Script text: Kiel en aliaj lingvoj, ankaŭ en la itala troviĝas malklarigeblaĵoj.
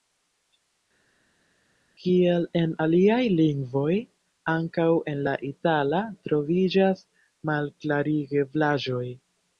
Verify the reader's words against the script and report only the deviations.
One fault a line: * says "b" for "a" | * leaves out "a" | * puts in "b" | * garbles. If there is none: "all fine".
all fine